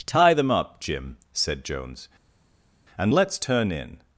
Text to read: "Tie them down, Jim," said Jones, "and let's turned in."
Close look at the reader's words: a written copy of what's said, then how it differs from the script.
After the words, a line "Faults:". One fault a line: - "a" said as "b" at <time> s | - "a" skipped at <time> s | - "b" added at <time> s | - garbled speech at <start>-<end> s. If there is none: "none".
"Tie them up, Jim," said Jones, "and let's turn in."
Faults:
- "down" said as "up" at 0.5 s
- "turned" said as "turn" at 3.4 s